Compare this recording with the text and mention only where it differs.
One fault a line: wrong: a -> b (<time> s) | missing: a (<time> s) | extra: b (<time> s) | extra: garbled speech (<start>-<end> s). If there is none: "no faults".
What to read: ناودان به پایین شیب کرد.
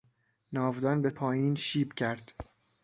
no faults